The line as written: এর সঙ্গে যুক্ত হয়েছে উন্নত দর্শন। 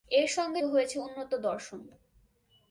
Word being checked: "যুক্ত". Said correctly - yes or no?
no